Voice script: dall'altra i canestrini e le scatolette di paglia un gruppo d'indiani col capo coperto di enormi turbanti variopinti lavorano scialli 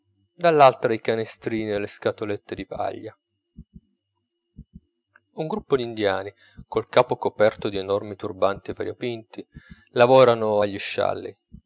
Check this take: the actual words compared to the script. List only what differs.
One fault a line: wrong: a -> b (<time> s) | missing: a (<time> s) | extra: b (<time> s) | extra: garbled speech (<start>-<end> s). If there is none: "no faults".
extra: agli (10.6 s)